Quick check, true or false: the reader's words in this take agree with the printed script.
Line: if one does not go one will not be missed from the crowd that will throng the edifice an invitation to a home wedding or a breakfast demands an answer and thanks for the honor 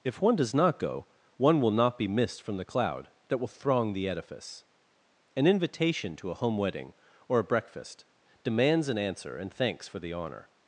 false